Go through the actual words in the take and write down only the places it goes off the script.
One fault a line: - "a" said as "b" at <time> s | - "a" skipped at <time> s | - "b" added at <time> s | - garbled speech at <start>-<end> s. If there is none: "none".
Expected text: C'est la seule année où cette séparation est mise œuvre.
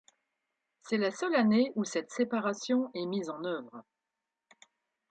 - "en" added at 3.3 s